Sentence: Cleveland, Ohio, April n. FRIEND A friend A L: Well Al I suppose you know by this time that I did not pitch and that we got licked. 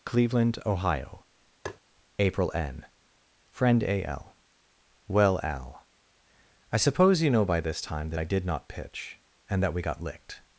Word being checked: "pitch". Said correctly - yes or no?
yes